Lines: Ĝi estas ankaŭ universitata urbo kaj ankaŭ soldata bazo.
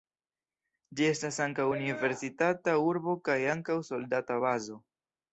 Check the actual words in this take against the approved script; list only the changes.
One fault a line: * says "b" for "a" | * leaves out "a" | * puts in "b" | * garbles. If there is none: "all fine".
all fine